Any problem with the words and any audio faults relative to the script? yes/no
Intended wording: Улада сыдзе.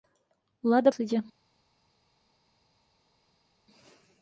no